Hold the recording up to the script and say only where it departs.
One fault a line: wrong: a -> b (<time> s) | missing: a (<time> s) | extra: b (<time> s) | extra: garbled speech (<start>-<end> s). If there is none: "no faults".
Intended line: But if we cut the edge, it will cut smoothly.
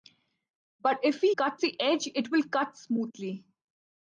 no faults